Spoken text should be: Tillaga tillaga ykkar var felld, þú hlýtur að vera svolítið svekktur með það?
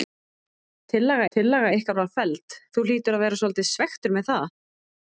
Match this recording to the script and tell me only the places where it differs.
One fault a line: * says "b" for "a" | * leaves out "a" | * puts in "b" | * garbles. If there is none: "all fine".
all fine